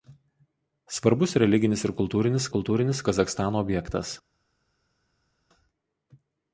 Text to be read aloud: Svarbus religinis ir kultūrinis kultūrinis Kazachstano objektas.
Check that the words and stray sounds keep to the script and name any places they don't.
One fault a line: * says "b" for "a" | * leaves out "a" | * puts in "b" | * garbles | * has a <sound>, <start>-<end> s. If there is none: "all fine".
all fine